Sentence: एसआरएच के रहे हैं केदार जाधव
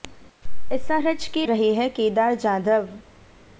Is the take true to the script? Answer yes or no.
yes